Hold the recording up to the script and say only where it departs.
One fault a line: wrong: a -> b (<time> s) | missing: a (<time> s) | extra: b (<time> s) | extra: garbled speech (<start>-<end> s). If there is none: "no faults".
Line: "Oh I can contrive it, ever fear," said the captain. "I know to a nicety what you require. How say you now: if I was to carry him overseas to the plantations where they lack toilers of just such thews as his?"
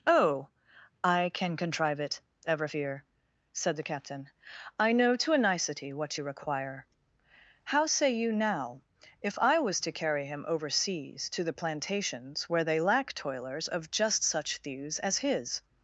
no faults